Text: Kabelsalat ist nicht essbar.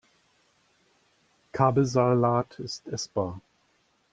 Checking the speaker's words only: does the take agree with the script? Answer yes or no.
no